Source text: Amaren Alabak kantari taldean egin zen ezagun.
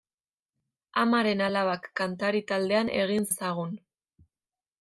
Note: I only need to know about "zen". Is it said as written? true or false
false